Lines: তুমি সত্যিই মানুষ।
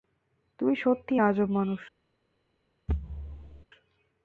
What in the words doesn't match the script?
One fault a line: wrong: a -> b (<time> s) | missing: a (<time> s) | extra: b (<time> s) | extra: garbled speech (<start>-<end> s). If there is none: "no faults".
extra: আজব (1.2 s)